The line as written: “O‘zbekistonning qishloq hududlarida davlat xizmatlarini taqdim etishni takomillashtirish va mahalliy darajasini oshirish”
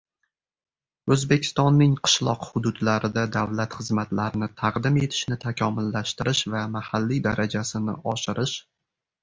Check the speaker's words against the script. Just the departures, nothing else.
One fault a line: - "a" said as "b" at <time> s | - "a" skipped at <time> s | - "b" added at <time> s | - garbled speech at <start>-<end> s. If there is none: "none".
none